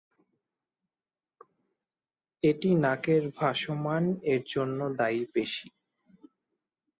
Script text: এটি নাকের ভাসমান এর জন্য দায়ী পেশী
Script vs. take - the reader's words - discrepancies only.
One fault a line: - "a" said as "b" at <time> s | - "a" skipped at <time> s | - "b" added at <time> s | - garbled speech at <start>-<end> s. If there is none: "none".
none